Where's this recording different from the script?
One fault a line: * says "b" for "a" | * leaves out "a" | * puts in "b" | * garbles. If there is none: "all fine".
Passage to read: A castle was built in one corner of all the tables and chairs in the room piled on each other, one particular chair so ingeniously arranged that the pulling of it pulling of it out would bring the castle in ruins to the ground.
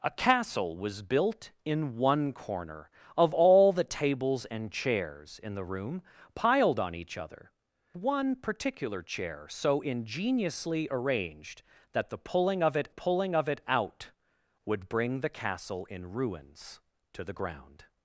all fine